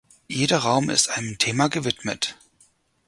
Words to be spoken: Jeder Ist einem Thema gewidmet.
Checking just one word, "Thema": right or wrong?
right